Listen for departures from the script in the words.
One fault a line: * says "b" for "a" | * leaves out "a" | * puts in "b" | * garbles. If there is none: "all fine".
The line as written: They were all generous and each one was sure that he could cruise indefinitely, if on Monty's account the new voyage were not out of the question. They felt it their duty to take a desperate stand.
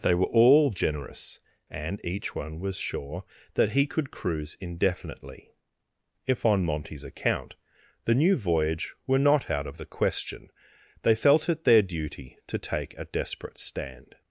all fine